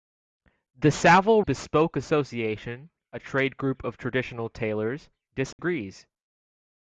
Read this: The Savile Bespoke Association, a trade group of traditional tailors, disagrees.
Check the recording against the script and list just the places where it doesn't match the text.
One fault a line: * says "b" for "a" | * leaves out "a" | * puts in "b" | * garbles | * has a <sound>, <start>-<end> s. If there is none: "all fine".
* has a dropout, 5.5-5.6 s